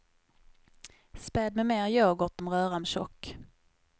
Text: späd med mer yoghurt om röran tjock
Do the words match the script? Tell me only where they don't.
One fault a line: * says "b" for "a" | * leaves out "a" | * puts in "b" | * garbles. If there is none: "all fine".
all fine